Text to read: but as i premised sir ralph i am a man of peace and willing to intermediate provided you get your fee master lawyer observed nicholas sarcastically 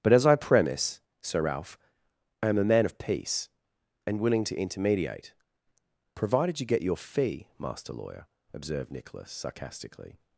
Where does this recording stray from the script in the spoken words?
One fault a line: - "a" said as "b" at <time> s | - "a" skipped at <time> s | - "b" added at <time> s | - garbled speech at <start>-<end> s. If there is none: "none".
- "premised" said as "premise" at 0.3 s